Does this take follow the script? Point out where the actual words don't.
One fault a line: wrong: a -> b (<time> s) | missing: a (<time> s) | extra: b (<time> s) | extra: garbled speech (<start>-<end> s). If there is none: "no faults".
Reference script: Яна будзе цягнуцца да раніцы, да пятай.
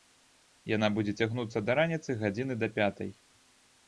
extra: гадзіны (2.2 s)